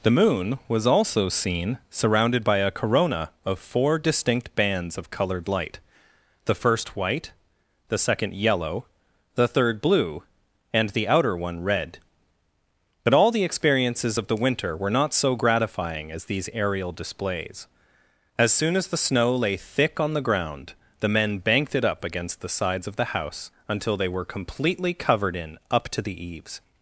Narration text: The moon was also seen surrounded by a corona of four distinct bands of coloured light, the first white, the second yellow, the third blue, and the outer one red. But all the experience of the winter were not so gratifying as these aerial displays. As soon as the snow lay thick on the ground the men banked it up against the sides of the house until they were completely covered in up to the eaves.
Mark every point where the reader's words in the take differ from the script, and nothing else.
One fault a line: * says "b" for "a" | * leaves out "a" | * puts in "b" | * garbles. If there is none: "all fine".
* says "experiences" for "experience"